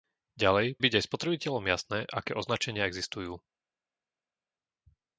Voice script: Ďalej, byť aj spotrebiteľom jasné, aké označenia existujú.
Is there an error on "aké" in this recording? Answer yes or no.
no